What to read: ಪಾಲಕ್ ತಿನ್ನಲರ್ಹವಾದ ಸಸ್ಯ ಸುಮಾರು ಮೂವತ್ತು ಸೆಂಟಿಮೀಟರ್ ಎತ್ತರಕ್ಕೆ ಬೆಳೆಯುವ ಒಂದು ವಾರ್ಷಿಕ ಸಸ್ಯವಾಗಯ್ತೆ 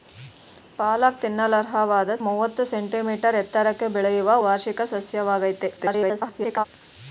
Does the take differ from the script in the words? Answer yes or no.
yes